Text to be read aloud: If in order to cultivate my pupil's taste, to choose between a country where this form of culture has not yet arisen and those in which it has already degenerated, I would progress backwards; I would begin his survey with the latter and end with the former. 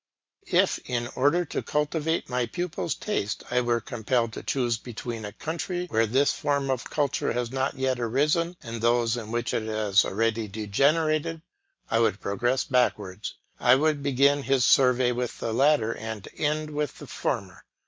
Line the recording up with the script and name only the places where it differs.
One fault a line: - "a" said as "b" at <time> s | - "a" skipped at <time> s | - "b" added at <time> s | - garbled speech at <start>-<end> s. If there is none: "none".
- "I were compelled" added at 3.5 s